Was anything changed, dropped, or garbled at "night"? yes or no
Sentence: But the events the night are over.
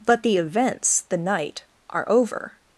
no